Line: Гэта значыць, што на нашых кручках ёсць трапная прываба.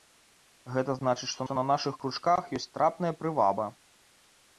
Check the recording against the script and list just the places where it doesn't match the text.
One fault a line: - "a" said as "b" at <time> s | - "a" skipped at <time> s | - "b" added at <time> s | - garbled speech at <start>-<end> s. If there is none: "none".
- "што" added at 1.5 s